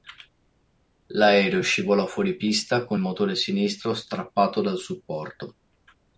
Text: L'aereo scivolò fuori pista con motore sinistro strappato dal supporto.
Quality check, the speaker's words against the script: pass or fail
pass